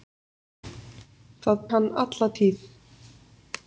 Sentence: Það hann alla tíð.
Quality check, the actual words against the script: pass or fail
pass